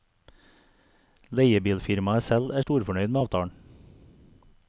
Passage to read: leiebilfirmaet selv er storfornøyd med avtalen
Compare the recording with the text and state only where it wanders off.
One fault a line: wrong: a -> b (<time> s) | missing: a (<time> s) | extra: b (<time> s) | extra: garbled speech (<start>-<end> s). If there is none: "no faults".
no faults